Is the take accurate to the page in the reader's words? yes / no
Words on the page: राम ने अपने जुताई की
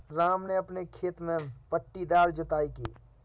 no